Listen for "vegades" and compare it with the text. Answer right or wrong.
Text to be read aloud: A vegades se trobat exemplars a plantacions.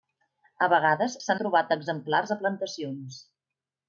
right